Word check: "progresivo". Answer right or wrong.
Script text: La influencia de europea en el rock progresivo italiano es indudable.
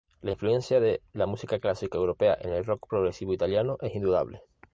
right